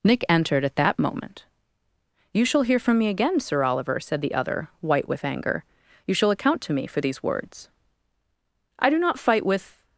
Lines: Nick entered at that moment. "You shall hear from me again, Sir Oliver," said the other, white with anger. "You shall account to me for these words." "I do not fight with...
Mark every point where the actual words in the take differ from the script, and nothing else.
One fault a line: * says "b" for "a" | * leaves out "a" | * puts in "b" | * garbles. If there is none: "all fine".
all fine